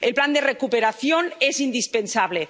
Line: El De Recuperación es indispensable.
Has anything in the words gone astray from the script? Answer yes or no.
yes